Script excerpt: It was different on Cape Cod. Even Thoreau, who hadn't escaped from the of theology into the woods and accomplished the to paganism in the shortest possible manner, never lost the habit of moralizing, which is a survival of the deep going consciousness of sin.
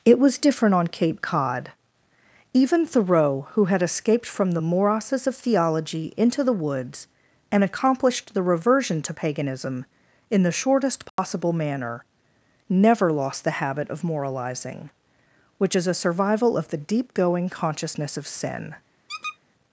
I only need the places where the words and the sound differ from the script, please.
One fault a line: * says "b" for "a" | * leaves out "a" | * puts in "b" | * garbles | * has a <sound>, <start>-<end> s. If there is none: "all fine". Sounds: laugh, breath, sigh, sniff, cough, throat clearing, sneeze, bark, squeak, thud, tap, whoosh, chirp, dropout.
* says "had" for "hadn't"
* puts in "morasses"
* puts in "reversion"
* has a dropout, 11.1-11.2 s
* has a squeak, 19.1-19.4 s